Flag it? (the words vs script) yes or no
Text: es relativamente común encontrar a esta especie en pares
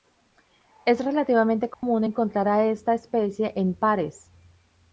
no